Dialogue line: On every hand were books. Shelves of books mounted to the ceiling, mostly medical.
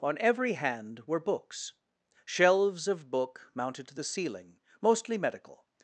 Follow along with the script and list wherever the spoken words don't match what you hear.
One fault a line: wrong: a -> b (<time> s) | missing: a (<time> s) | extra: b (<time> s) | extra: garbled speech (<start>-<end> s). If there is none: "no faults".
wrong: books -> book (3.1 s)